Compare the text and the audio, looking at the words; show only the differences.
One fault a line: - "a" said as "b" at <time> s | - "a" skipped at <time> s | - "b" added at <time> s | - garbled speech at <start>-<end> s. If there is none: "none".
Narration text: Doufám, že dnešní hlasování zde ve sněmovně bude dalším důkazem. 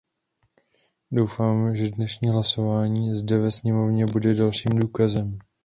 none